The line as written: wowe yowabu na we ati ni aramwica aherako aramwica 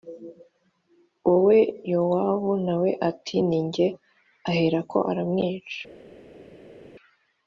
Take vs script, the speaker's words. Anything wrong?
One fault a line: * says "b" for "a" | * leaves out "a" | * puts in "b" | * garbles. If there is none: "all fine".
* says "jye" for "aramwica"